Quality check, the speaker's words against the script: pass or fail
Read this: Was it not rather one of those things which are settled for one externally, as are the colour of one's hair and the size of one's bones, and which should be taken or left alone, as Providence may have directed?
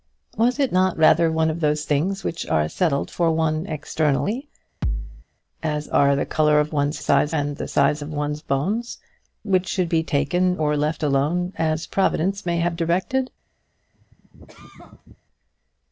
fail